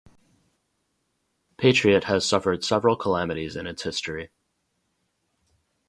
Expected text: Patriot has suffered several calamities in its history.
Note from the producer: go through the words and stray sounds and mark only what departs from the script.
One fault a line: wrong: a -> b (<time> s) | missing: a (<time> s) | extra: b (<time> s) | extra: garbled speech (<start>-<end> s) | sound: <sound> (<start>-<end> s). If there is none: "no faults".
no faults